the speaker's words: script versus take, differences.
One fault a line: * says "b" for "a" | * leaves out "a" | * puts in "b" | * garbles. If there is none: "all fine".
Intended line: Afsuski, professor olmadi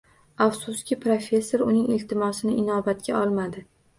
* puts in "uning iltimosini inobatga"